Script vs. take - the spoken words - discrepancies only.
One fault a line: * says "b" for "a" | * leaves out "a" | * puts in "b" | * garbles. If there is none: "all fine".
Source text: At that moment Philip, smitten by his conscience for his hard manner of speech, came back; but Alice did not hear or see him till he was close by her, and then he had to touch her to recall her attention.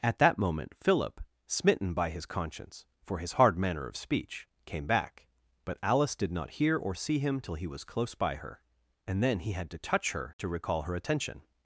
all fine